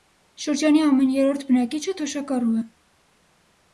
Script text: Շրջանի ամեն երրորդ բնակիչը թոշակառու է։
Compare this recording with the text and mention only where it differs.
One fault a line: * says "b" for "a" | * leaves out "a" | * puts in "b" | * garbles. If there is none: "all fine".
all fine